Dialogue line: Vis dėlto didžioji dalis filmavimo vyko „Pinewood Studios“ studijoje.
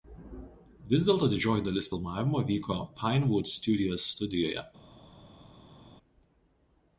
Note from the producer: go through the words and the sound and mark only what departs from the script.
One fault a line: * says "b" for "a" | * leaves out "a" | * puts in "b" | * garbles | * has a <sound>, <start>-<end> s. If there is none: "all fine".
all fine